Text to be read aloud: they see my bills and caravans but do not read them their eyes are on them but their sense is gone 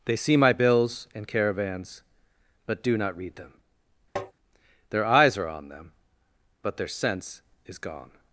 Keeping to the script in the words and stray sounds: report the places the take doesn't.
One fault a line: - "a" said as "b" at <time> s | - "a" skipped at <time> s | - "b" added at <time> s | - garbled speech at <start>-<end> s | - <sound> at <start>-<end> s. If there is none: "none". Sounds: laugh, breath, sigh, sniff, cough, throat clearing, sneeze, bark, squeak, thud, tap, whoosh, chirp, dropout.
- tap at 4.2-4.3 s